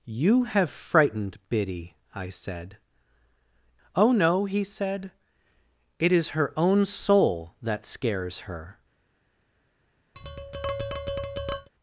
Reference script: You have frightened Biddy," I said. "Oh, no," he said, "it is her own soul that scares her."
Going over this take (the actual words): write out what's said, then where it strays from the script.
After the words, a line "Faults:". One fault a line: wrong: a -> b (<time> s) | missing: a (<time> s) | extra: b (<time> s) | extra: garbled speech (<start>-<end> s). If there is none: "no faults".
You have frightened Biddy," I said. "Oh, no," he said, "it is her own soul that scares her."
Faults:
no faults